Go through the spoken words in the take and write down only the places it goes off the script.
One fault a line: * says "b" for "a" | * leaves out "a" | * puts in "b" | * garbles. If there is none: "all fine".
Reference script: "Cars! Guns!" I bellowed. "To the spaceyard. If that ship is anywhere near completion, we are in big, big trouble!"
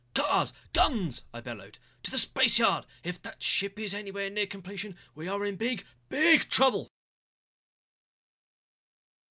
all fine